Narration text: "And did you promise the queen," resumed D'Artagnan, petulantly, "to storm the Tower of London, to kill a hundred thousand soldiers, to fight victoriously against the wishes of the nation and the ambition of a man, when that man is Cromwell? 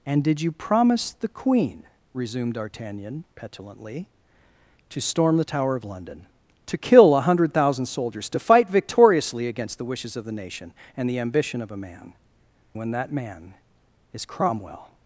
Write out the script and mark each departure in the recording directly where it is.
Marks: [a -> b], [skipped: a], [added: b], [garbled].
"And did you promise the queen," resumed D'Artagnan, petulantly, "to storm the Tower of London, to kill a hundred thousand soldiers, to fight victoriously against the wishes of the nation and the ambition of a man, when that man is Cromwell?